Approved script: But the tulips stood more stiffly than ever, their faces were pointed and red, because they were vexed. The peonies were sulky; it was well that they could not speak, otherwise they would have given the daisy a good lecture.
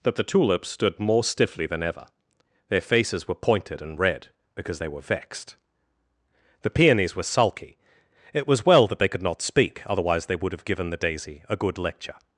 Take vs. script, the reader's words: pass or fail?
fail